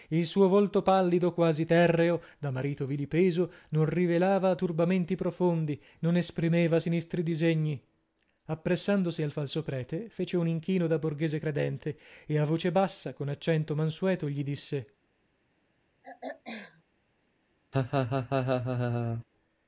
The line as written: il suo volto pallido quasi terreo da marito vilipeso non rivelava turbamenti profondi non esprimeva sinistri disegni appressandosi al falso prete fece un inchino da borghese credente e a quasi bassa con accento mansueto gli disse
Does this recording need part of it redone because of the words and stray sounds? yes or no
yes